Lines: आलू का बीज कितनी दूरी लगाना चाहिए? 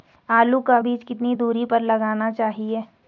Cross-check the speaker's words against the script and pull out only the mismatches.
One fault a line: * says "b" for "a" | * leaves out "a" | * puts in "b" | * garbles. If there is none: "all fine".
* puts in "पर"